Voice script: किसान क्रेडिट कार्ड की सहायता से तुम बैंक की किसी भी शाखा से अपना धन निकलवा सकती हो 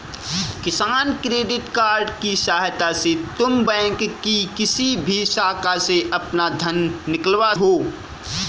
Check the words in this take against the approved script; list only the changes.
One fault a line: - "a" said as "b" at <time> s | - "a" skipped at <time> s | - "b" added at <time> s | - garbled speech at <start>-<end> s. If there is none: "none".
- "सकती" skipped at 7.5 s